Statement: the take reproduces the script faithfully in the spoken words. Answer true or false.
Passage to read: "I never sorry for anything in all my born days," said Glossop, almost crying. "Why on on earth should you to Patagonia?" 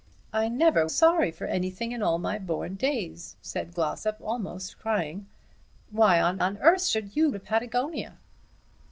true